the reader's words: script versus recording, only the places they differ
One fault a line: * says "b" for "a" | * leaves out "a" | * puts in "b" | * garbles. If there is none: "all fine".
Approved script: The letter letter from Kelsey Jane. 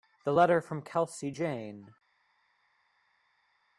* leaves out "letter"